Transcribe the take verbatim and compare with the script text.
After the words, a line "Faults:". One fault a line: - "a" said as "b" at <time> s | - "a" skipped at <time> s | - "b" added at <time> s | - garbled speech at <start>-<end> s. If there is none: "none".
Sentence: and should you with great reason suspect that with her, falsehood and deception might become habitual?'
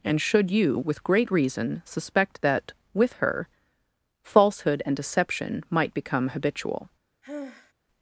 and should you with great reason suspect that with her, falsehood and deception might become habitual?'
Faults:
none